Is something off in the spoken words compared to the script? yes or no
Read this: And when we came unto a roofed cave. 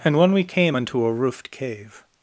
no